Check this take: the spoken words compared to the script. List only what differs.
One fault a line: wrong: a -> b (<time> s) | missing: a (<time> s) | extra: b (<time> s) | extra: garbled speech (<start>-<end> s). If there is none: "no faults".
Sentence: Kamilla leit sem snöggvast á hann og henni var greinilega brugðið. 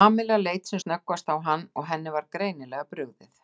no faults